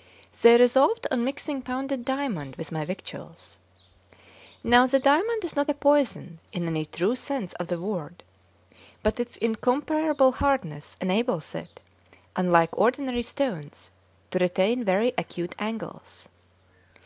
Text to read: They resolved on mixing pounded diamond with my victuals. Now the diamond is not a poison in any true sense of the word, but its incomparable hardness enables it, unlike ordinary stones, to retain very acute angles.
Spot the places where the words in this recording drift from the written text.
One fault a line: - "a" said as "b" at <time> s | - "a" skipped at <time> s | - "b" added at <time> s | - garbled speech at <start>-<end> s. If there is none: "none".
none